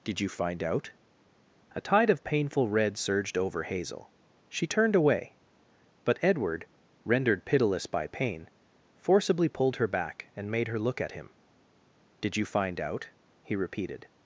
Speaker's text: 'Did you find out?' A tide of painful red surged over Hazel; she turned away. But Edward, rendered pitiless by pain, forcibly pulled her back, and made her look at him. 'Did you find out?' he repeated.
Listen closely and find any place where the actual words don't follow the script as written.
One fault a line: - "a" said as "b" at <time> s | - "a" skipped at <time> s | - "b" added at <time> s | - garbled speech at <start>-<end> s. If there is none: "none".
none